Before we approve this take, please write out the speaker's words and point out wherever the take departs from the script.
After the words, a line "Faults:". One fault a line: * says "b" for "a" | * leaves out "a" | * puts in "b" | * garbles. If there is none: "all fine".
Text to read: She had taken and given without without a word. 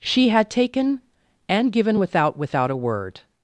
She had taken and given without without a word.
Faults:
all fine